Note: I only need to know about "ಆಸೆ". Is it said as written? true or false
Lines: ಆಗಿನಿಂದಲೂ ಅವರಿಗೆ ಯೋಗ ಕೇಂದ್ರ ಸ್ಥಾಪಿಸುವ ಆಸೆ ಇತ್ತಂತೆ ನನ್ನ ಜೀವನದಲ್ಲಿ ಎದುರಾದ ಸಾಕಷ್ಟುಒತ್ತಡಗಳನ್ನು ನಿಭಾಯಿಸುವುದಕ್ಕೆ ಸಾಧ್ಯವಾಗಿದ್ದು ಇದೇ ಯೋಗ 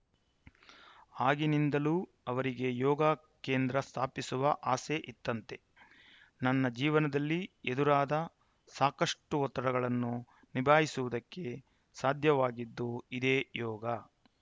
true